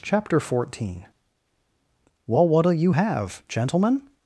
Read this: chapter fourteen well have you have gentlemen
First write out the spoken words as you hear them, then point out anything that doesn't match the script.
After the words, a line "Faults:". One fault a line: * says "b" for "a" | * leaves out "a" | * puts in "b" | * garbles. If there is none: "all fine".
chapter fourteen well what'll you have gentlemen
Faults:
* says "what'll" for "have"